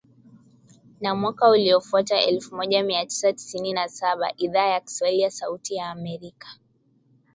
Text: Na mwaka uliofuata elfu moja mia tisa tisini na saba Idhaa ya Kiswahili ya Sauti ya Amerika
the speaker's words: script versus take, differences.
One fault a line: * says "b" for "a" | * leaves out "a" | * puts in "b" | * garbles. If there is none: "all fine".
all fine